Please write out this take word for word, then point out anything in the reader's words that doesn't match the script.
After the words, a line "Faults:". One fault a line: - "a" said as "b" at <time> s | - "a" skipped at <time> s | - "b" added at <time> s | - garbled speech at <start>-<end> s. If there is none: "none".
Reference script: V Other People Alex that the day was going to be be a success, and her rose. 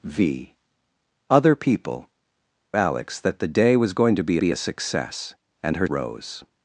V Other People Alex that the day was going to be be a success, and her rose.
Faults:
none